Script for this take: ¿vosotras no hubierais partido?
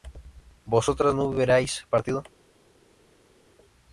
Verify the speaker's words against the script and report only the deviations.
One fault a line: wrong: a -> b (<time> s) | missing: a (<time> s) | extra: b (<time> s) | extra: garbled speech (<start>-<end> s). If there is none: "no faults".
no faults